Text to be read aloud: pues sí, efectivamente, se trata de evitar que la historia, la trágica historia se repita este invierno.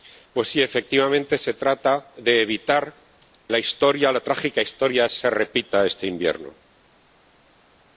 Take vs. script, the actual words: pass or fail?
fail